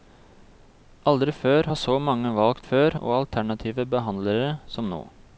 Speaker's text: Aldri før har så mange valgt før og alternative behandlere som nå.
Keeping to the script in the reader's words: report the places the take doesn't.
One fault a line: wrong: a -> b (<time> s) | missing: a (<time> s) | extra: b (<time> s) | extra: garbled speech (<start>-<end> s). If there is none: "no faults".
no faults